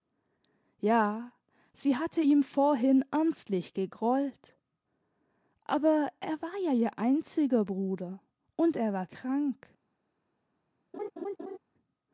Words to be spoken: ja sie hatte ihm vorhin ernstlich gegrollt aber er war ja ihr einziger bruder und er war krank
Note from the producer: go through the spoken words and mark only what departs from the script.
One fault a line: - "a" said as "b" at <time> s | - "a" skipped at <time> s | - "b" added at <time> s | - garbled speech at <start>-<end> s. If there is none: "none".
none